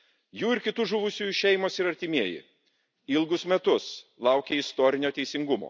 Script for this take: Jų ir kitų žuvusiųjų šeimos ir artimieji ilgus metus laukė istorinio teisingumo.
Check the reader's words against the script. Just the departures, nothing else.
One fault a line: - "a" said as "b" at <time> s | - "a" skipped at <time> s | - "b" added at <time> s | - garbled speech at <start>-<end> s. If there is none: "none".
none